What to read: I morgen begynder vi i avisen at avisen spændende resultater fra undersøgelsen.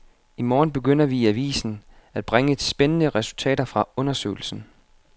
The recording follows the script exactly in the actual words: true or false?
false